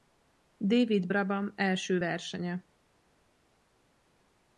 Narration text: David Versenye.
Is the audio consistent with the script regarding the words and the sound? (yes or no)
no